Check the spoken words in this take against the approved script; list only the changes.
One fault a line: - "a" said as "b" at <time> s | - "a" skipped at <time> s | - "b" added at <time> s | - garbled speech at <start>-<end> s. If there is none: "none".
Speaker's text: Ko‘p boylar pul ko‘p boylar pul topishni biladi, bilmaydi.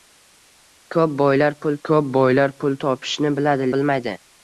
none